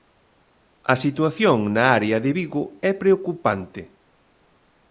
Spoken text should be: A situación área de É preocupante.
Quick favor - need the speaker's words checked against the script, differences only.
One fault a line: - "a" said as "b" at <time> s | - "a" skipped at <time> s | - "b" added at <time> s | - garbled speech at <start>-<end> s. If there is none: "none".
- "na" added at 1.8 s
- "Vigo" added at 2.4 s